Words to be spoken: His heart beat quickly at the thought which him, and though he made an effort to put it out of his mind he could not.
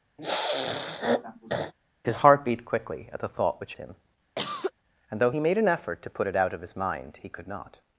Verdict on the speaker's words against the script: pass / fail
pass